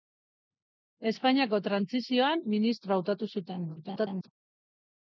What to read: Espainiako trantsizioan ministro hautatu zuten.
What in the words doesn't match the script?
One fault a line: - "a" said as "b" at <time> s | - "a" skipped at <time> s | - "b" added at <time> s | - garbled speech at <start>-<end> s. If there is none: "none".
- garbled speech at 3.8-4.3 s